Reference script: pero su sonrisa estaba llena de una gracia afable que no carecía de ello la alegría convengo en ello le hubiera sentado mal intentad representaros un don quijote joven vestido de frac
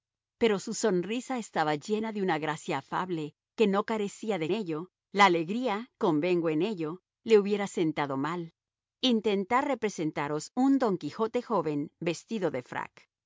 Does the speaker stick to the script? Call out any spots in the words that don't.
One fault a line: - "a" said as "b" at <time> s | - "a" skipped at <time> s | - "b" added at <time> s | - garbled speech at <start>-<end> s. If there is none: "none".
none